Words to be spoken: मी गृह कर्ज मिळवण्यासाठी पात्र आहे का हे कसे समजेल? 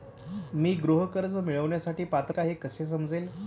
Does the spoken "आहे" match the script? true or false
false